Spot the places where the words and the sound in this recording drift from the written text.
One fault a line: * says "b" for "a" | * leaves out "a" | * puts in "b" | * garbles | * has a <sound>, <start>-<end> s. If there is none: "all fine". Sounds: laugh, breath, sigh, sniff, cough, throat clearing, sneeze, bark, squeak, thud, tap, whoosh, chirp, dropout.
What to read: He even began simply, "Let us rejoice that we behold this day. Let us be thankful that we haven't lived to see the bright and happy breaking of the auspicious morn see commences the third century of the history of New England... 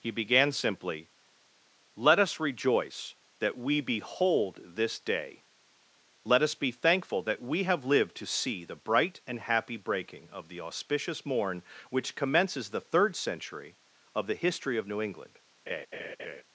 * leaves out "even"
* says "have" for "haven't"
* says "which" for "see"
* has a laugh, 15.7-16.4 s